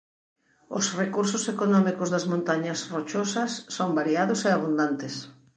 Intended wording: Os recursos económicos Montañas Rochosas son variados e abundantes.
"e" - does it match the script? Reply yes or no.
yes